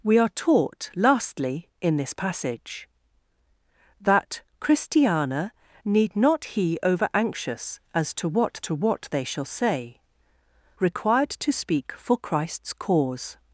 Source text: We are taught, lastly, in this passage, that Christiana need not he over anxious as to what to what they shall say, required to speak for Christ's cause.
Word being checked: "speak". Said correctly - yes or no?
yes